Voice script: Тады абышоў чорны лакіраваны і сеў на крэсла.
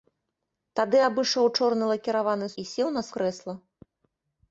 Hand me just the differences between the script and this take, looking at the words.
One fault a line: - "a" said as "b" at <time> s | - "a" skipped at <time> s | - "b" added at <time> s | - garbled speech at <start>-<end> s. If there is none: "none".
none